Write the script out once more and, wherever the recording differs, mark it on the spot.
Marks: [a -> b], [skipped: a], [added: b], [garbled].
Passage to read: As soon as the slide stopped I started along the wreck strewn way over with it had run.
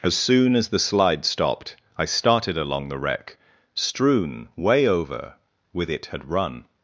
As soon as the slide stopped I started along the wreck strewn way over with it had run.